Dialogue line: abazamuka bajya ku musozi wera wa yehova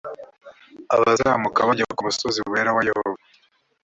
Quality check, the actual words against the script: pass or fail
pass